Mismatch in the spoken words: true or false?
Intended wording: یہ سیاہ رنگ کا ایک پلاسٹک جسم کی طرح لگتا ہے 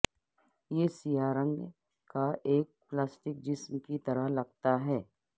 false